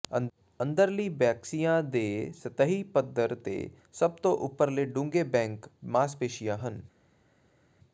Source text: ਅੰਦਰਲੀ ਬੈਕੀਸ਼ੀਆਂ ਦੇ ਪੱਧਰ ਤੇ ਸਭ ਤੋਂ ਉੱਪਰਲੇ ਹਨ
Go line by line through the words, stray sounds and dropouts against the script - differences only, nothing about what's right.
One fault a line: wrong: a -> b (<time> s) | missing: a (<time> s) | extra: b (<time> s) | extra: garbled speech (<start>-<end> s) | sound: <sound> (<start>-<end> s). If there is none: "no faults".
extra: ਸਤਹੀ (2.4 s)
extra: ਡੂੰਘੇ ਬੈਕ ਮਾਸਪੇਸ਼ੀਆਂ (4.9 s)